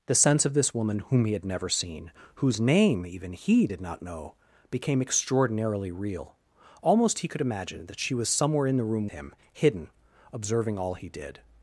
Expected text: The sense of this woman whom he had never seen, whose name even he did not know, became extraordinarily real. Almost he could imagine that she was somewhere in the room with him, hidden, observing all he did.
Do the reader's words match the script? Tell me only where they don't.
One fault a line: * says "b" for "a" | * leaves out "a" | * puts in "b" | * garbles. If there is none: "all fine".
* leaves out "with"